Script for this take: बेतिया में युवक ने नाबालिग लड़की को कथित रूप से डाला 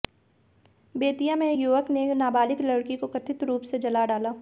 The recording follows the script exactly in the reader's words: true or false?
false